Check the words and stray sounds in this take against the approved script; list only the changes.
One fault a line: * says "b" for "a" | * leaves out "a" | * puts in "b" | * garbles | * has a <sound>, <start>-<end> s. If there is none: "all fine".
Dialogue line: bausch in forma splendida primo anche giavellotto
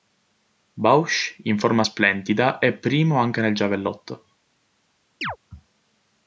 * puts in "è"
* puts in "nel"
* has a chirp, 5.2-5.4 s